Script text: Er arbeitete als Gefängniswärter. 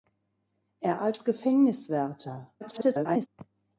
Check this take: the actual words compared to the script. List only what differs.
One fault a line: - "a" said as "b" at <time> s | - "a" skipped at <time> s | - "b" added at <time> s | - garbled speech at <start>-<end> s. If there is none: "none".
- "arbeitete" skipped at 1.0 s
- garbled speech at 2.6-3.3 s